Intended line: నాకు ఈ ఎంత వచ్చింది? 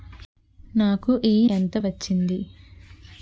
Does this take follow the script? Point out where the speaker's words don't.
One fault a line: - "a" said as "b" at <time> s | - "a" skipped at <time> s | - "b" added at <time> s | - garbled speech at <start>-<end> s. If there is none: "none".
none